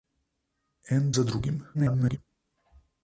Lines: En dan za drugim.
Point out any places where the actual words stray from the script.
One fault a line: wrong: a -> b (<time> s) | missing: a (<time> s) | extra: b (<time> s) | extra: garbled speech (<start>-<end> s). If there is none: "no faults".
missing: dan (1.1 s)
extra: garbled speech (1.7-2.2 s)